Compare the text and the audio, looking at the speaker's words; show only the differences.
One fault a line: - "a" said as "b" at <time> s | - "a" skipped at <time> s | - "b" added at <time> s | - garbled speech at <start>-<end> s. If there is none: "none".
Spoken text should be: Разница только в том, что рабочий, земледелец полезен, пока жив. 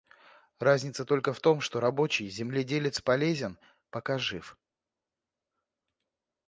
none